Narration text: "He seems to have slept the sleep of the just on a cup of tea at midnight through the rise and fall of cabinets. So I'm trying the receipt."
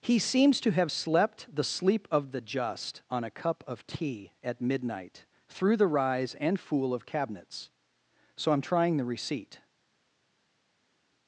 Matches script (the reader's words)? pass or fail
fail